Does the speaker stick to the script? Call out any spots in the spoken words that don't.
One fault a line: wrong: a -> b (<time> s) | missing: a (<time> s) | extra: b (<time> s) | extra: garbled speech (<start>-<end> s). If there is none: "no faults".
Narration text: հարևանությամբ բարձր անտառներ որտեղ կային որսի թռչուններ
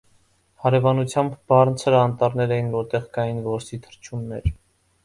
extra: էին (2.6 s)